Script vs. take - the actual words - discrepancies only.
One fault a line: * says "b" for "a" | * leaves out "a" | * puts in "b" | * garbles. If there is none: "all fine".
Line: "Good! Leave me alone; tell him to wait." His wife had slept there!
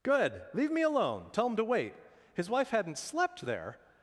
* says "hadn't" for "had"